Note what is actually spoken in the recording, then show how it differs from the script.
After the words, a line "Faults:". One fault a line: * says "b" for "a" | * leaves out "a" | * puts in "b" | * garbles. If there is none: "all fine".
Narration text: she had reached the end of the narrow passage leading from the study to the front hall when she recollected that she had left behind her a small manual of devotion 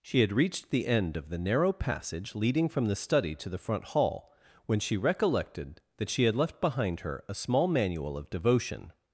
she had reached the end of the narrow passage leading from the study to the front hall when she recollected that she had left behind her a small manual of devotion
Faults:
all fine